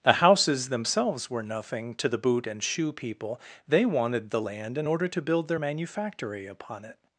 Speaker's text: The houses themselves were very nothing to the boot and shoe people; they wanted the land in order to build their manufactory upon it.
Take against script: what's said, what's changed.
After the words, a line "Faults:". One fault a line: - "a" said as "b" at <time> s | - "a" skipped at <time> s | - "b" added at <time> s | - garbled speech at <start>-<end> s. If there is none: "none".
The houses themselves were nothing to the boot and shoe people; they wanted the land in order to build their manufactory upon it.
Faults:
- "very" skipped at 1.4 s